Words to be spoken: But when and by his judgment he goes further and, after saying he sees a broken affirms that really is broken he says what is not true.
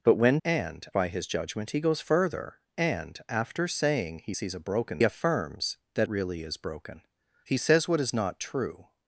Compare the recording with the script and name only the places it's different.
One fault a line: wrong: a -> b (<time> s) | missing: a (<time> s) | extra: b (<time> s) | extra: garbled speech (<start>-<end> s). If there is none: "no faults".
no faults